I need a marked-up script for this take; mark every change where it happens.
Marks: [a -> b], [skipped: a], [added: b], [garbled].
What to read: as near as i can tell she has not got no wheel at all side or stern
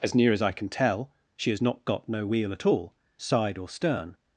as near as i can tell she has not got no wheel at all side or stern